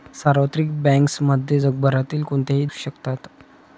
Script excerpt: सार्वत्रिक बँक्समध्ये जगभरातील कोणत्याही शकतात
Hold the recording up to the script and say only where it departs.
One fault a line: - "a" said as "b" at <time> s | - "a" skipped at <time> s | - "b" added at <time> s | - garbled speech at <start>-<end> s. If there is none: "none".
none